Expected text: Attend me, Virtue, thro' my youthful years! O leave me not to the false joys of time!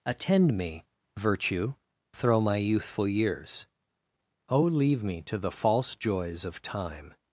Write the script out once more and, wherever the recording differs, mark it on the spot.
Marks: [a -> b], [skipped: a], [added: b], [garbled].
Attend me, Virtue, thro' my youthful years! O leave me [skipped: not] to the false joys of time!